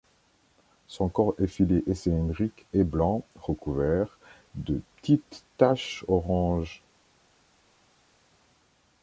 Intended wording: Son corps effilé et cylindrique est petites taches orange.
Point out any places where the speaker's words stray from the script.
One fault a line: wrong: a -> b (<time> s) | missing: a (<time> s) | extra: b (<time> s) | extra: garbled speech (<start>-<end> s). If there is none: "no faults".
extra: blanc recouvert de (2.8 s)